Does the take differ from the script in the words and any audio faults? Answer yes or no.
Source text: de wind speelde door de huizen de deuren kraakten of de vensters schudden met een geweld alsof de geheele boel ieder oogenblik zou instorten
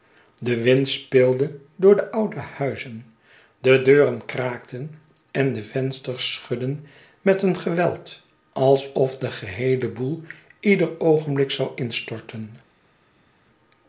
yes